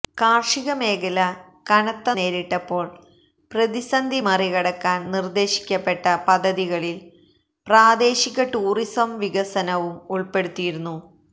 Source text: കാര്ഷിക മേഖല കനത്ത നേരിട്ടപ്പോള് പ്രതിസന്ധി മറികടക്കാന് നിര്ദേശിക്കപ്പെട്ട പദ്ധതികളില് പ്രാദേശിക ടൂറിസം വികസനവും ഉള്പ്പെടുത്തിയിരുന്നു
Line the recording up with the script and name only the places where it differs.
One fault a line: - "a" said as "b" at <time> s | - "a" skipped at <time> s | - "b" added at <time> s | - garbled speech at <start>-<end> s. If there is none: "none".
none